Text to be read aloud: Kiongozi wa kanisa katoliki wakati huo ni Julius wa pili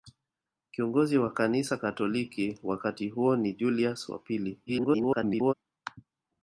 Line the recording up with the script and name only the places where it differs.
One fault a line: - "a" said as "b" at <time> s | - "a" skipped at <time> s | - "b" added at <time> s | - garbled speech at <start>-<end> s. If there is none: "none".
- garbled speech at 4.7-5.5 s